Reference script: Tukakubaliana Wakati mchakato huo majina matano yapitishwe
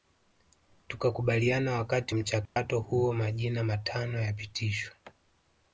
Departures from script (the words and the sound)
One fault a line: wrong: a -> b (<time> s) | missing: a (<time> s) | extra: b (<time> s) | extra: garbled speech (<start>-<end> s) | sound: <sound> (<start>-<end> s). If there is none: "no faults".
sound: dropout (2.5-2.6 s)